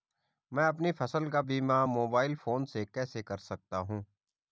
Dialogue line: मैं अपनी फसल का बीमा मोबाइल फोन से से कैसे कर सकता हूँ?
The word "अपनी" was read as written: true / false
true